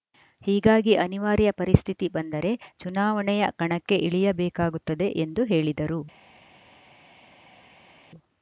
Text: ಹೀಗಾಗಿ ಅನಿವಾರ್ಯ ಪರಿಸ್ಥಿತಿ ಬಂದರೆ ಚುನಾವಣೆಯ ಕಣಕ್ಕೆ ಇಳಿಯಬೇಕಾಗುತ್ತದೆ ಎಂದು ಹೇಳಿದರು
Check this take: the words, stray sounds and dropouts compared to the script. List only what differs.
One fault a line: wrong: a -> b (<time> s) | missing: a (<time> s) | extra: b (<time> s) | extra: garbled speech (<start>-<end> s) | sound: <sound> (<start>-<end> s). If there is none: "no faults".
no faults